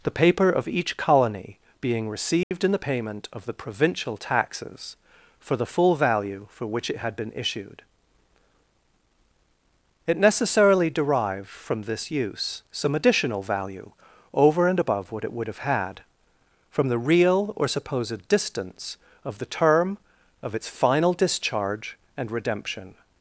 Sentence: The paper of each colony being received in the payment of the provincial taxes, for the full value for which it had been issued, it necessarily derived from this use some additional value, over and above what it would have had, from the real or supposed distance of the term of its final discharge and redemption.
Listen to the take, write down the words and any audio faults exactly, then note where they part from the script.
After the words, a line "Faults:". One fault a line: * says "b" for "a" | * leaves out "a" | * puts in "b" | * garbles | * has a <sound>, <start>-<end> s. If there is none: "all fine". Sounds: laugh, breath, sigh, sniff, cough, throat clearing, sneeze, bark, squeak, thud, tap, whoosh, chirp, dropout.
The paper of each colony being received in the payment of the provincial taxes, for the full value for which it had been issued, it necessarily derived from this use some additional value, over and above what it would have had, from the real or supposed distance of the term of its final discharge and redemption.
Faults:
* has a dropout, 2.4-2.5 s